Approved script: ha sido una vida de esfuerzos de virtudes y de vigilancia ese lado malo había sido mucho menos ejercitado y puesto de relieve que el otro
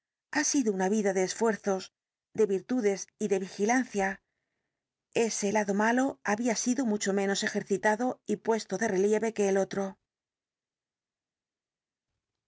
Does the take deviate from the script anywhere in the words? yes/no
no